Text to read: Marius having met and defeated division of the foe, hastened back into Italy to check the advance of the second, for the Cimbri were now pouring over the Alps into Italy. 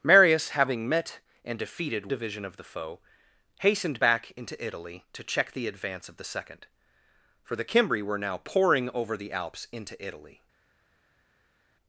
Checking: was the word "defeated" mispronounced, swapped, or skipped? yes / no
no